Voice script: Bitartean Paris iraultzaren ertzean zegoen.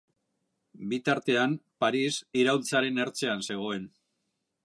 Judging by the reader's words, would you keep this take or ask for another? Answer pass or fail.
pass